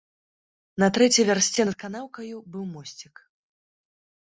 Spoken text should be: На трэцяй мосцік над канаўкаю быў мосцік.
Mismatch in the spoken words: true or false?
true